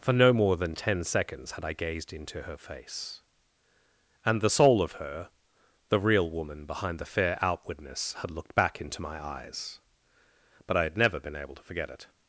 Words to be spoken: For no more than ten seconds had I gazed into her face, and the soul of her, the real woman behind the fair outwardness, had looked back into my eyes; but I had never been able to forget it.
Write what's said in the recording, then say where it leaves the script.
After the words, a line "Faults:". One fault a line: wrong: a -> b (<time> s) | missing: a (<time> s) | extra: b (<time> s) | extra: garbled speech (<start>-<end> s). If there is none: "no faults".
For no more than ten seconds had I gazed into her face, and the soul of her, the real woman behind the fair outwardness, had looked back into my eyes; but I had never been able to forget it.
Faults:
no faults